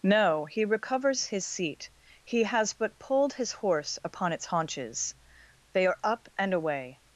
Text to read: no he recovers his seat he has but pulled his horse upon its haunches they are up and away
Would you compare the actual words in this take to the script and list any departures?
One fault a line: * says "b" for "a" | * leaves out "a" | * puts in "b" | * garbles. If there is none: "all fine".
all fine